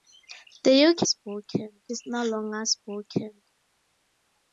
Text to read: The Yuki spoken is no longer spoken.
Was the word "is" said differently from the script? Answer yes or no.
no